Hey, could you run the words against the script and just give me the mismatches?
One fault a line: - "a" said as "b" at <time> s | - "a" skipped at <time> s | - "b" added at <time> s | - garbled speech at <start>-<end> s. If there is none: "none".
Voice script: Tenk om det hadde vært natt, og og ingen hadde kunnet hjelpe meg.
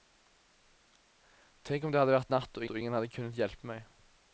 none